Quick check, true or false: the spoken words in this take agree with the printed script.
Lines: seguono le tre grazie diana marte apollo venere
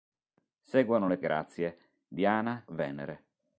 false